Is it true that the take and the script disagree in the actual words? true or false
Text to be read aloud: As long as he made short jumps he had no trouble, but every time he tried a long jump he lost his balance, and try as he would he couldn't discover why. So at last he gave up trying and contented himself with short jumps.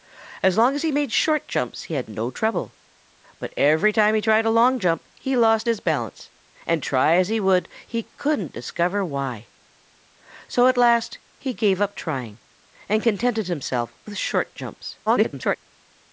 true